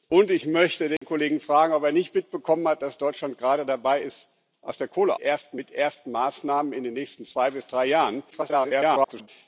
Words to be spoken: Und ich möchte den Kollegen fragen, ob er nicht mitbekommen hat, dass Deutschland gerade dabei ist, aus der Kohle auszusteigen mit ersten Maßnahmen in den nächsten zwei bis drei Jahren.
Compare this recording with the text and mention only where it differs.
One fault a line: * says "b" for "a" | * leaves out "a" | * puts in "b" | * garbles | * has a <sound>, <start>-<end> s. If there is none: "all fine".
* has a dropout, 1.0-1.0 s
* says "ersten" for "auszusteigen"
* garbles